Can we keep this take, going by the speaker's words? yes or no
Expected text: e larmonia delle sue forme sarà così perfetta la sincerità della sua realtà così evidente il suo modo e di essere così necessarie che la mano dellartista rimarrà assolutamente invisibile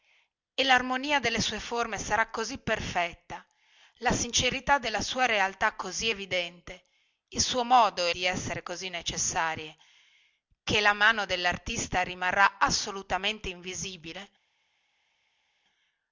yes